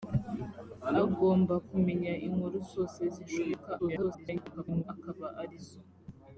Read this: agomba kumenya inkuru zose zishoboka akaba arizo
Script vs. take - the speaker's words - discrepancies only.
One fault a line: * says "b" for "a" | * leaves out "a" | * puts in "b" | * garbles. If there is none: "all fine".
* garbles